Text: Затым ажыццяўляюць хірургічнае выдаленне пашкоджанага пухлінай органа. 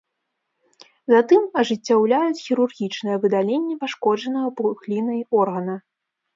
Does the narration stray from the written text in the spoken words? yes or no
no